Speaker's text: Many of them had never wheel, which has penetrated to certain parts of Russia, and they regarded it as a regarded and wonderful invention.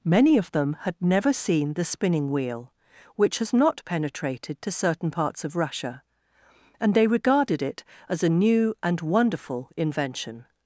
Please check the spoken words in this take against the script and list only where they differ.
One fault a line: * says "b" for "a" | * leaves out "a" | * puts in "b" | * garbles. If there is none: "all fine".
* puts in "seen the spinning"
* puts in "not"
* says "new" for "regarded"